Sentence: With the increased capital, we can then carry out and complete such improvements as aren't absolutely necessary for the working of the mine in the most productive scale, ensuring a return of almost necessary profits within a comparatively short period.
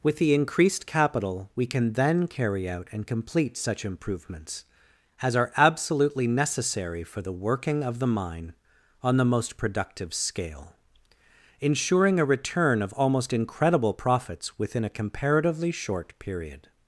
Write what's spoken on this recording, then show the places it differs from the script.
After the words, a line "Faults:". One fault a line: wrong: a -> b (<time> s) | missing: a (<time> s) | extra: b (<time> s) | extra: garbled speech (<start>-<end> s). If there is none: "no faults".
With the increased capital, we can then carry out and complete such improvements as are absolutely necessary for the working of the mine on the most productive scale, ensuring a return of almost incredible profits within a comparatively short period.
Faults:
wrong: aren't -> are (5.3 s)
wrong: in -> on (9.0 s)
wrong: necessary -> incredible (13.3 s)